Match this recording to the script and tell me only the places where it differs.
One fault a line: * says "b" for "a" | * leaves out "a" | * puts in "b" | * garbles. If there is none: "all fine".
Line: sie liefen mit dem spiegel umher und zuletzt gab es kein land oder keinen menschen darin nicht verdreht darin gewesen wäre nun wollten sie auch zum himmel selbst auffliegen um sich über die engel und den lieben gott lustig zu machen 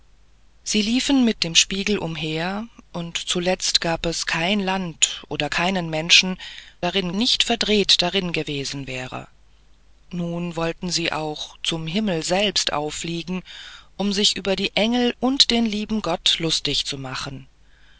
all fine